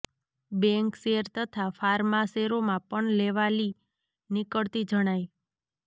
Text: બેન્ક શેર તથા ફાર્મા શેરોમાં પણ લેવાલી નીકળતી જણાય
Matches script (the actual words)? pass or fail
pass